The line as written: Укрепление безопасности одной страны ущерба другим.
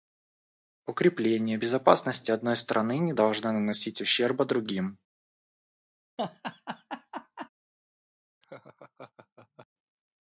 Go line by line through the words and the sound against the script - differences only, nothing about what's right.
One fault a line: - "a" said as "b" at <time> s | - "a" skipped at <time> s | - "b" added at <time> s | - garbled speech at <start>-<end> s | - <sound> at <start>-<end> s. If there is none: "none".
- "не должно наносить" added at 3.0 s
- laugh at 6.2-7.5 s
- laugh at 8.4-9.7 s